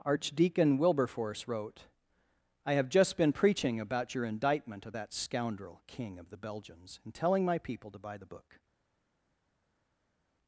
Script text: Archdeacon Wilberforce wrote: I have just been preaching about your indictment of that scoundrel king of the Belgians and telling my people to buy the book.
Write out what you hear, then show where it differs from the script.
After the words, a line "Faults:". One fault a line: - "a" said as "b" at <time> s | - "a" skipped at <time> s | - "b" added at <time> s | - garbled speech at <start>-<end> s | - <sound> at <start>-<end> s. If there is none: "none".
Archdeacon Wilberforce wrote: I have just been preaching about your indictment of that scoundrel king of the Belgians and telling my people to buy the book.
Faults:
none